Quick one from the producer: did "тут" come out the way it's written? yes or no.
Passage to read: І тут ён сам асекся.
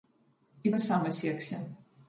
no